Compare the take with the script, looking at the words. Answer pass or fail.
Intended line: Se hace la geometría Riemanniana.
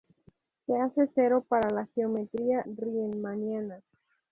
fail